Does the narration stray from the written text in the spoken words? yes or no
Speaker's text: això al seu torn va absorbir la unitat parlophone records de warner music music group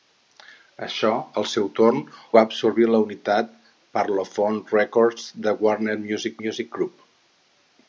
no